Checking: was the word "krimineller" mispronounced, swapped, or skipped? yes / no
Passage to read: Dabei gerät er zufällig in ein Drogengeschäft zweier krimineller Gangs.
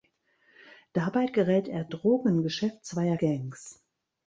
yes